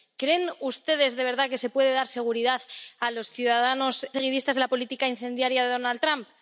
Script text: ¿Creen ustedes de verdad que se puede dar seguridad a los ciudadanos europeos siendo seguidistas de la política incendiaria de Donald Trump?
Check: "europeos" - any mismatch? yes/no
yes